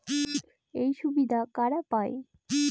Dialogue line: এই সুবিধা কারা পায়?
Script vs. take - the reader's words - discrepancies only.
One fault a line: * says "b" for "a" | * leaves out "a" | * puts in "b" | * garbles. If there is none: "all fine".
all fine